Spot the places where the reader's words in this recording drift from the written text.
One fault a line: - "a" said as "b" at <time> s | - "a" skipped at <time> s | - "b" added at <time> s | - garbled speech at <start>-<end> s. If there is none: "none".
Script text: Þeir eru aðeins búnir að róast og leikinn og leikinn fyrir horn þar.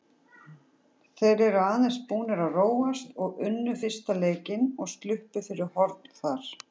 - "unnu fyrsta" added at 3.5 s
- "leikinn" said as "sluppu" at 5.0 s